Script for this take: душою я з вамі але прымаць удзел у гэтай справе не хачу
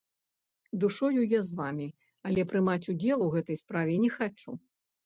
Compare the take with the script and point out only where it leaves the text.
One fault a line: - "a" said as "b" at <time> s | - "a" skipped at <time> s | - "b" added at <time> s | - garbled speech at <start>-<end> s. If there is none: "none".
none